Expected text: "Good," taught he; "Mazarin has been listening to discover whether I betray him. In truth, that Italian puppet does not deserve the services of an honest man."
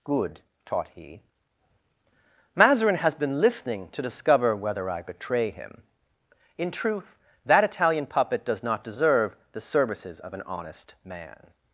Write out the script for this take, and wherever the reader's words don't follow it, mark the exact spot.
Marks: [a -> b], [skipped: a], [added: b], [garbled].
"Good," taught he; "Mazarin has been listening to discover whether I betray him. In truth, that Italian puppet does not deserve the services of an honest man."